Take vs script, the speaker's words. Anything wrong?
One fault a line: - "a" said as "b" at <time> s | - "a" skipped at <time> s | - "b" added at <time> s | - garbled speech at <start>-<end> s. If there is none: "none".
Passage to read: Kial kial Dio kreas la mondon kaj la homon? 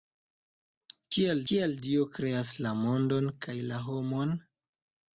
none